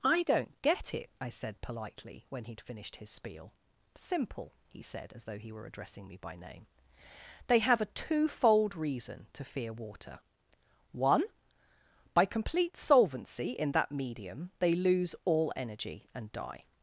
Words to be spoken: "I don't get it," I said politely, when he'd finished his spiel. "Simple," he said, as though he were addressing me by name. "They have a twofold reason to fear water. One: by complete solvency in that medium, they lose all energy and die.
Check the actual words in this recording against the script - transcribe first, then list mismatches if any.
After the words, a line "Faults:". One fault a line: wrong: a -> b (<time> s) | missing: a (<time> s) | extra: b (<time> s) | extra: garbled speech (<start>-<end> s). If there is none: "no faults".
"I don't get it," I said politely, when he'd finished his spiel. "Simple," he said, as though he were addressing me by name. "They have a twofold reason to fear water. One: by complete solvency in that medium, they lose all energy and die.
Faults:
no faults